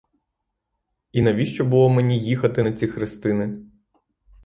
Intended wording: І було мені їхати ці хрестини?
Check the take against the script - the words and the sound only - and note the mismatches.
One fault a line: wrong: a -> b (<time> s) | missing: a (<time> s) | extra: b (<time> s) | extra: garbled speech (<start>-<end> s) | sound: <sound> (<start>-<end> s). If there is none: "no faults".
extra: навіщо (1.2 s)
extra: на (2.6 s)